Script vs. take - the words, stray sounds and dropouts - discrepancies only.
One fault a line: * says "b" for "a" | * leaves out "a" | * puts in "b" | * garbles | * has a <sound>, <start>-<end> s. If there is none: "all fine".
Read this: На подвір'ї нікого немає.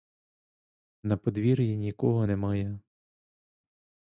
all fine